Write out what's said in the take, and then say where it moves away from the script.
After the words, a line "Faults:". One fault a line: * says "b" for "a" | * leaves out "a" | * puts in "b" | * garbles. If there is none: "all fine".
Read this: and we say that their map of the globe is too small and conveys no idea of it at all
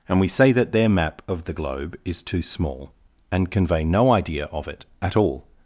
and we say that their map of the globe is too small and convey no idea of it at all
Faults:
* says "convey" for "conveys"